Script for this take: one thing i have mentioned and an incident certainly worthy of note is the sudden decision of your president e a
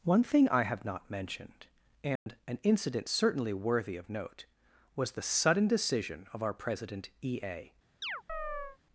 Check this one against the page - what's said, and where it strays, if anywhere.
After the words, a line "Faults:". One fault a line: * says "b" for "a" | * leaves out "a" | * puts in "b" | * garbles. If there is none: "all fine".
one thing i have not mentioned and an incident certainly worthy of note was the sudden decision of our president e a
Faults:
* puts in "not"
* says "was" for "is"
* says "our" for "your"